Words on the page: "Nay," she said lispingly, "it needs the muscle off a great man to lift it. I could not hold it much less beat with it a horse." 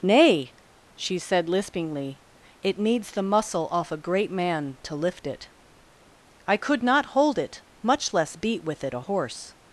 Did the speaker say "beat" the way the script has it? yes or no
yes